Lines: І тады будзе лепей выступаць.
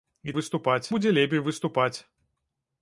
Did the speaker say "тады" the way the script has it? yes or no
no